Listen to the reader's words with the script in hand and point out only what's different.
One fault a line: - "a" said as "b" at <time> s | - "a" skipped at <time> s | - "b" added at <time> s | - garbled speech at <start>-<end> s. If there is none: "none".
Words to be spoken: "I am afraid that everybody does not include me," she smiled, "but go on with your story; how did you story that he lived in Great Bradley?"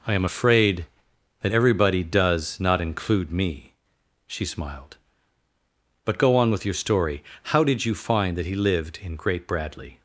- "story" said as "find" at 7.9 s